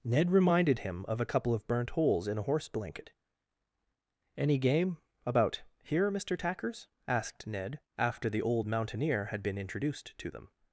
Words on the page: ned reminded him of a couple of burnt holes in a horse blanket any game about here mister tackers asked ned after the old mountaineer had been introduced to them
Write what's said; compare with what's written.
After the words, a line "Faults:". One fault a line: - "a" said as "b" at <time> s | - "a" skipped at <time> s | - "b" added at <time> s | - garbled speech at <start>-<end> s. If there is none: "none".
ned reminded him of a couple of burnt holes in a horse blanket any game about here mister tackers asked ned after the old mountaineer had been introduced to them
Faults:
none